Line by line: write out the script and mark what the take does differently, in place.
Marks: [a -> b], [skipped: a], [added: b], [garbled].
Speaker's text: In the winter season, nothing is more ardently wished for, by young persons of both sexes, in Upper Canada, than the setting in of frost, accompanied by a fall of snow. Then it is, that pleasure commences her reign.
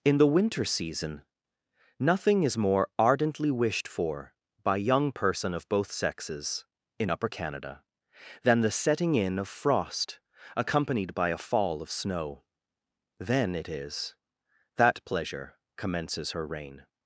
In the winter season, nothing is more ardently wished for, by young [persons -> person] of both sexes, in Upper Canada, than the setting in of frost, accompanied by a fall of snow. Then it is, that pleasure commences her reign.